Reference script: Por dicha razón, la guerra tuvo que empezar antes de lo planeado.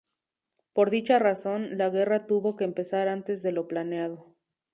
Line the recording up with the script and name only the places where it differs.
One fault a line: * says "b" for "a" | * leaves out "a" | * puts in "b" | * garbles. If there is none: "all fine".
all fine